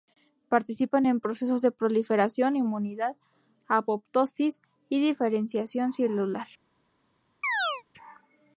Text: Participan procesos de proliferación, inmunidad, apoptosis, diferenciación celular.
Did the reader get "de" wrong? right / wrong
right